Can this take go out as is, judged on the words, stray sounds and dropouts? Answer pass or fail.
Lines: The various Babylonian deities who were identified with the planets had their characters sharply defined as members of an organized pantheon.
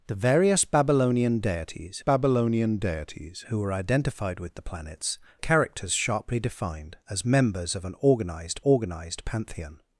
fail